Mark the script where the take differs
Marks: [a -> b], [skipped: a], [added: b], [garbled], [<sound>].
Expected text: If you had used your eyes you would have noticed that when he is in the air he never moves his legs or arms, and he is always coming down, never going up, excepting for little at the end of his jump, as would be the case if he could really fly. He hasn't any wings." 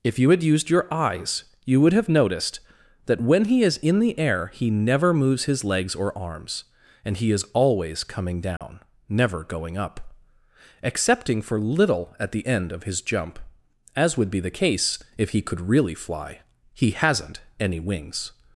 If you had used your eyes you would have noticed that when he is in the air he never moves his legs or arms, and he is always coming down, [dropout] never going up, excepting for little at the end of his jump, as would be the case if he could really fly. He hasn't any wings."